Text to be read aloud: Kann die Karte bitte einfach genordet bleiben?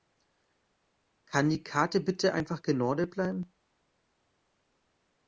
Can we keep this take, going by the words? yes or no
yes